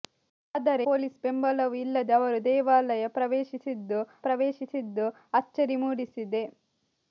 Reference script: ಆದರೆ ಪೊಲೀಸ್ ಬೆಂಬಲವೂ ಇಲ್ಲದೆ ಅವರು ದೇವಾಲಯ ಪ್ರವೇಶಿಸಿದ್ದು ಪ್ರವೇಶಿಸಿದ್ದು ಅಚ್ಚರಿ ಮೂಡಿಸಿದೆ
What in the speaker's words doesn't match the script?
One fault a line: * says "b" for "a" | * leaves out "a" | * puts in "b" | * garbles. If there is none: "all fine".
all fine